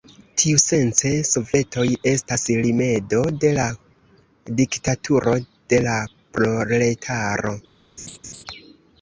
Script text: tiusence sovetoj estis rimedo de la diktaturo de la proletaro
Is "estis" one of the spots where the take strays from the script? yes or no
yes